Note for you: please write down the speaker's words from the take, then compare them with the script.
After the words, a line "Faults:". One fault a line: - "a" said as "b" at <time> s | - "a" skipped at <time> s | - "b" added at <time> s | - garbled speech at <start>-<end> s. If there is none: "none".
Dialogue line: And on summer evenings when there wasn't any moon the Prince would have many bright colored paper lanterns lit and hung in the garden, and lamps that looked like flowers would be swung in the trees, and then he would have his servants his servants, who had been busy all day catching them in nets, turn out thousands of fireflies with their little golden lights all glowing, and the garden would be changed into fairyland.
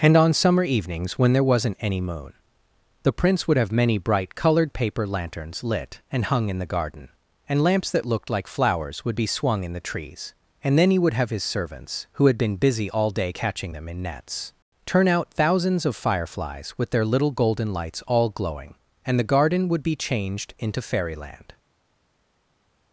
And on summer evenings when there wasn't any moon the Prince would have many bright colored paper lanterns lit and hung in the garden, and lamps that looked like flowers would be swung in the trees, and then he would have his servants, who had been busy all day catching them in nets, turn out thousands of fireflies with their little golden lights all glowing, and the garden would be changed into fairyland.
Faults:
- "his servants" skipped at 12.1 s